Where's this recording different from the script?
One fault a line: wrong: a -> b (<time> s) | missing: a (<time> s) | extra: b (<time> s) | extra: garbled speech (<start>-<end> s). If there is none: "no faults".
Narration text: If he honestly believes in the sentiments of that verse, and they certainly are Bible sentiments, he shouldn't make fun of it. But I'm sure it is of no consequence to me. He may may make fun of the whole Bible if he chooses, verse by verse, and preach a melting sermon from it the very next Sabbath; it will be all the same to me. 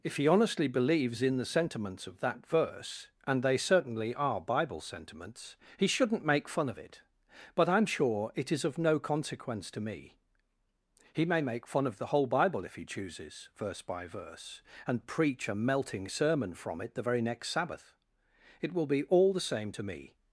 missing: may (11.4 s)